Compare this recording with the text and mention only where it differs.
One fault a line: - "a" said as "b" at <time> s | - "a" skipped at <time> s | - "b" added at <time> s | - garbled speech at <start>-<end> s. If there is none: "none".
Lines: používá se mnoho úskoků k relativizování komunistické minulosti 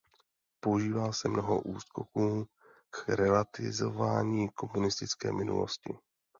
none